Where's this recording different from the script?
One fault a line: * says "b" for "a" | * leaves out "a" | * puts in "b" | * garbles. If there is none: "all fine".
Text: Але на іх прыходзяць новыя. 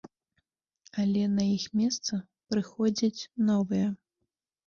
* puts in "месца"